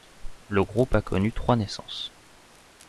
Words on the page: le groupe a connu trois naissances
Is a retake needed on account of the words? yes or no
no